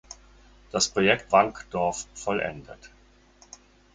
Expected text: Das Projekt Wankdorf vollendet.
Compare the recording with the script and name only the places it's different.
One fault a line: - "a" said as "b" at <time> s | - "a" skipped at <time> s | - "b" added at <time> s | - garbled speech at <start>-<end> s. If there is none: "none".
none